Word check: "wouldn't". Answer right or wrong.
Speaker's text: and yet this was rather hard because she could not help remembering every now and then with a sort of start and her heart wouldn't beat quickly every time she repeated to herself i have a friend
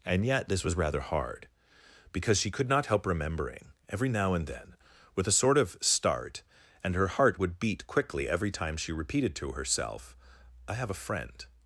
wrong